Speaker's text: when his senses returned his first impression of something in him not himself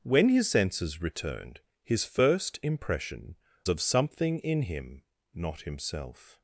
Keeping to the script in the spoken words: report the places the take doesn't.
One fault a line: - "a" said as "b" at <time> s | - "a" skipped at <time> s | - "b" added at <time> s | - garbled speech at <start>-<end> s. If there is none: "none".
none